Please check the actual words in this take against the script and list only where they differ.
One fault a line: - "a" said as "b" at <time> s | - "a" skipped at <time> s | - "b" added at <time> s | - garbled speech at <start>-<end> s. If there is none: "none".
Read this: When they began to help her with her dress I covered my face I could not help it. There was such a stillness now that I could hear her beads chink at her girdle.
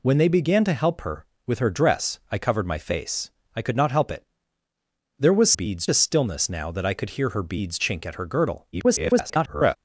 - "such" said as "beads" at 5.5 s
- garbled speech at 8.7-9.8 s